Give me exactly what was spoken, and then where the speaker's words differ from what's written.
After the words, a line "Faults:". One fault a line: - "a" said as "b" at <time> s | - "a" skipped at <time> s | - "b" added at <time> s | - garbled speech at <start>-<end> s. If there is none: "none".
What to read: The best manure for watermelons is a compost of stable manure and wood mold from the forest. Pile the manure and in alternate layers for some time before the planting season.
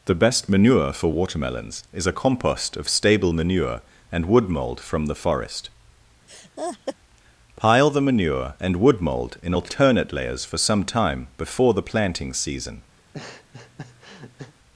The best manure for watermelons is a compost of stable manure and wood mold from the forest. Pile the manure and wood mold in alternate layers for some time before the planting season.
Faults:
- "wood mold" added at 8.8 s